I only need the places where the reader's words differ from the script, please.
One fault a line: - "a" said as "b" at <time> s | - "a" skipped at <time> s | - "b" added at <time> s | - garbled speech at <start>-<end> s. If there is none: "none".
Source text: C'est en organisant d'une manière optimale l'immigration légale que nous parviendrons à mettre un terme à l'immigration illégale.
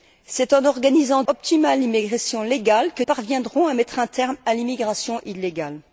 - "d'une manière" skipped at 1.2 s
- "nous" skipped at 3.0 s